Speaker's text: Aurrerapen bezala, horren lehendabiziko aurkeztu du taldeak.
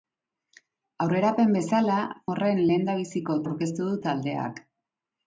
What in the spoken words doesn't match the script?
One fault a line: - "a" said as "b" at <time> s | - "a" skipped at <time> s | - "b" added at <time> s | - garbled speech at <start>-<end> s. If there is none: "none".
none